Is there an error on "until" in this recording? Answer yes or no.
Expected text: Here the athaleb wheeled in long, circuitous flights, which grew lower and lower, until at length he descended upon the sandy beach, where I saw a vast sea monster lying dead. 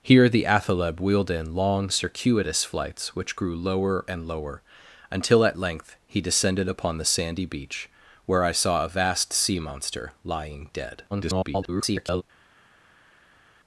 no